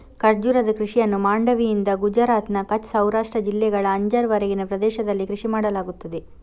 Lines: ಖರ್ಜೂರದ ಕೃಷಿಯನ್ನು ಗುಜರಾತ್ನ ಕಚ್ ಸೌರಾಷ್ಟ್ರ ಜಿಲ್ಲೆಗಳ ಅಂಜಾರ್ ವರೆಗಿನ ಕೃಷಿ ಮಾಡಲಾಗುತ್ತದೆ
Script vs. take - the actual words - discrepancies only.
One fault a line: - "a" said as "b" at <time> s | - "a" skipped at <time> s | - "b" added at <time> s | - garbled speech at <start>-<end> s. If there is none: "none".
- "ಮಾಂಡವಿಯಿಂದ" added at 1.2 s
- "ಪ್ರದೇಶದಲ್ಲಿ" added at 4.7 s